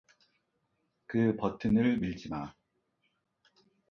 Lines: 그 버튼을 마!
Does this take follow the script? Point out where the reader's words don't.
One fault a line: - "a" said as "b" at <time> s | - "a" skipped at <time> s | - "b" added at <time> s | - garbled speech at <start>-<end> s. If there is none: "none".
- "밀지" added at 1.9 s